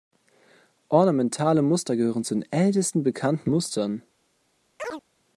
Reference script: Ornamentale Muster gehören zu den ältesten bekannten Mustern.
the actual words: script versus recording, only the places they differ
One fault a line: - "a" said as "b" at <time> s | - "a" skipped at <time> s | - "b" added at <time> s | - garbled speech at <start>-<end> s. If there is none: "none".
none